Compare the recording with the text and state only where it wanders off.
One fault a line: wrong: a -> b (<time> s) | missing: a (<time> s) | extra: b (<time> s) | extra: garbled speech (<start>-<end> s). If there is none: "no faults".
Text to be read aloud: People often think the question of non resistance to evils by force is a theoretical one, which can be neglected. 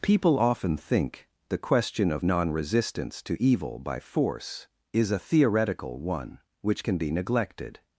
wrong: evils -> evil (3.4 s)